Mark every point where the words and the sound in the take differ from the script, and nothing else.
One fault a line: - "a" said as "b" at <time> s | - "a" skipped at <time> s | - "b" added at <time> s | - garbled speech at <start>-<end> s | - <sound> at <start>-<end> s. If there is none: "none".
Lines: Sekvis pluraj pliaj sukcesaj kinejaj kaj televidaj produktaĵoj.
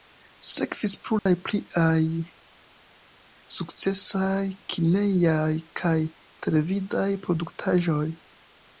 - dropout at 1.2-1.3 s